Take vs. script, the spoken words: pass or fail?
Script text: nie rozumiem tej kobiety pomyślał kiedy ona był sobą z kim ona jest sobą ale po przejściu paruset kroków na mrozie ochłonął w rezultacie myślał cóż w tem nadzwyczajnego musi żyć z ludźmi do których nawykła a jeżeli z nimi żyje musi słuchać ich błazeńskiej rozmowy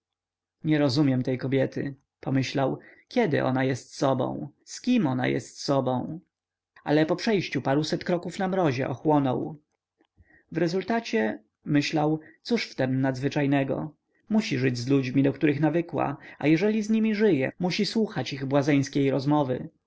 fail